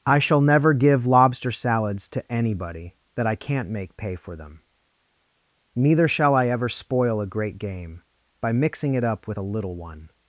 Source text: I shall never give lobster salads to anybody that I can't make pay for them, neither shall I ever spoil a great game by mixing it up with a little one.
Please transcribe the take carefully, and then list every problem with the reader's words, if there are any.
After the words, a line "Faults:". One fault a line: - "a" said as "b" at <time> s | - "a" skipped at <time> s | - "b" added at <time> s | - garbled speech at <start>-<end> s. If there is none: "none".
I shall never give lobster salads to anybody that I can't make pay for them, neither shall I ever spoil a great game by mixing it up with a little one.
Faults:
none